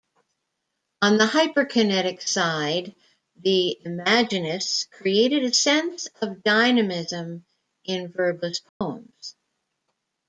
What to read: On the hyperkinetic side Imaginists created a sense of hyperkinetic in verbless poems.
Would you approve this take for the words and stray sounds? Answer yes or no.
no